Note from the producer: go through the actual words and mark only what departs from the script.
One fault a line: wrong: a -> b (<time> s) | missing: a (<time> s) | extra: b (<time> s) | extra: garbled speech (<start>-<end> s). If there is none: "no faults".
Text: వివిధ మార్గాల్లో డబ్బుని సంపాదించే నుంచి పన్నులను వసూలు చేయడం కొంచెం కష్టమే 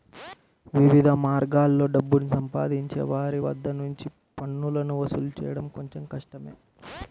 extra: వారి వద్ద (3.1 s)